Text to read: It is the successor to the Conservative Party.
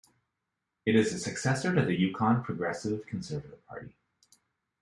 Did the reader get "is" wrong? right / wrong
right